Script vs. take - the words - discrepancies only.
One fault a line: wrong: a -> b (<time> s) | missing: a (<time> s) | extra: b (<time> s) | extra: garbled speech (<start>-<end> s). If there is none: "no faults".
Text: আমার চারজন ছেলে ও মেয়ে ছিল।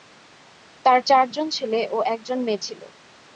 wrong: আমার -> তার (0.8 s)
extra: একজন (2.1 s)